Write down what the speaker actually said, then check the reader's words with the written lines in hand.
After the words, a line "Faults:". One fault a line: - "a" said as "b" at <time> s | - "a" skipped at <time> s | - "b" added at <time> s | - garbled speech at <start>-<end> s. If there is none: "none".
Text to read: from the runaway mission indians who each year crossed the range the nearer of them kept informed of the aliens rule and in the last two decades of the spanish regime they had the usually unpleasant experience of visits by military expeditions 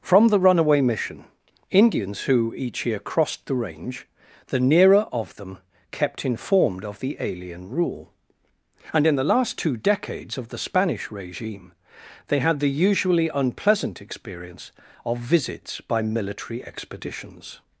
from the runaway mission indians who each year crossed the range the nearer of them kept informed of the alien rule and in the last two decades of the spanish regime they had the usually unpleasant experience of visits by military expeditions
Faults:
- "aliens" said as "alien" at 7.2 s